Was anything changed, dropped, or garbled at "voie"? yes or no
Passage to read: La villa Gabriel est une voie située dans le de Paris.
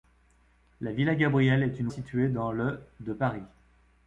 yes